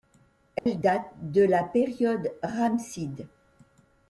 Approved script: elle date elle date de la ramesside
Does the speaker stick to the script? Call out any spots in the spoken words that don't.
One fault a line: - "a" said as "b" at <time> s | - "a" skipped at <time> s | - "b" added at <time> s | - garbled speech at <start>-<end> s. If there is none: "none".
- "elle date" skipped at 1.1 s
- "période" added at 1.6 s